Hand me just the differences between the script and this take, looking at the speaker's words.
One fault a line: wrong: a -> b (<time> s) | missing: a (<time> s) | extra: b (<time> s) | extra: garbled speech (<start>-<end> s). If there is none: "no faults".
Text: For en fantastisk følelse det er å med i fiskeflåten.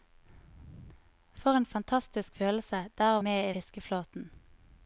no faults